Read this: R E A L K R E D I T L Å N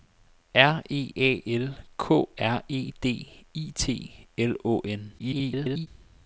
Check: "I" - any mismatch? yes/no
no